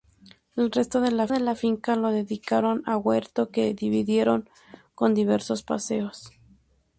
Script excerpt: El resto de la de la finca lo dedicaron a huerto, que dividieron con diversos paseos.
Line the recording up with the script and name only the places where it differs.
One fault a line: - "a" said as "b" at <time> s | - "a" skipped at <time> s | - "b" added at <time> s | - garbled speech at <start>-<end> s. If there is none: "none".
none